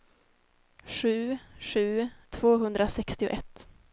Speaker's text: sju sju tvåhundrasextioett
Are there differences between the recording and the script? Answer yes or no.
no